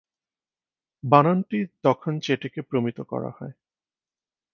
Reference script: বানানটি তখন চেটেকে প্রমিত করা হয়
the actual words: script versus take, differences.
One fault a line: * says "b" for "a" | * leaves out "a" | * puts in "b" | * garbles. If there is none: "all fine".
all fine